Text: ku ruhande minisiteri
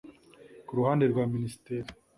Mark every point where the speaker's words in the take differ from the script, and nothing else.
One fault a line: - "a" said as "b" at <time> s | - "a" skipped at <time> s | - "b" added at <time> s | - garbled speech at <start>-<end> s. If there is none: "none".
- "rwa" added at 1.1 s